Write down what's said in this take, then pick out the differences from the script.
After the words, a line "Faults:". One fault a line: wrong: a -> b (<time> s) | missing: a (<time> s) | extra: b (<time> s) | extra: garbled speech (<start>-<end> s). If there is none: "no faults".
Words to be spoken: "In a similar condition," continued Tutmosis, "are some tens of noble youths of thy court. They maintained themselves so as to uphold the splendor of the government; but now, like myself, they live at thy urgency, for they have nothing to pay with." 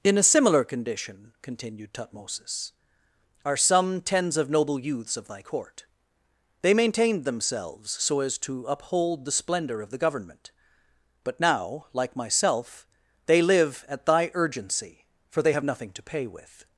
"In a similar condition," continued Tutmosis, "are some tens of noble youths of thy court. They maintained themselves so as to uphold the splendor of the government; but now, like myself, they live at thy urgency, for they have nothing to pay with."
Faults:
no faults